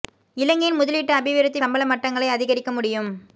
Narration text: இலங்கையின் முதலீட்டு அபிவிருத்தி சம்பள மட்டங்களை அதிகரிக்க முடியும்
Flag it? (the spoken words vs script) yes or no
no